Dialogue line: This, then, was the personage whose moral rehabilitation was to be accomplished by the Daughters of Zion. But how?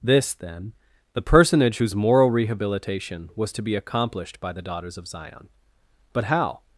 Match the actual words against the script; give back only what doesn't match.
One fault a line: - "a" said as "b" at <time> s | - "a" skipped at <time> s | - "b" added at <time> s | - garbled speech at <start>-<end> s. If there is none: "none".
- "was" skipped at 0.7 s